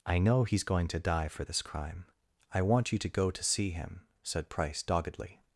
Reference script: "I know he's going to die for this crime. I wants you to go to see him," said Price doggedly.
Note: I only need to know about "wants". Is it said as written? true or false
false